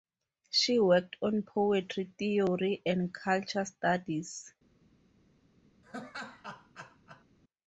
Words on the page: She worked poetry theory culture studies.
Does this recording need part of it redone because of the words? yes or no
yes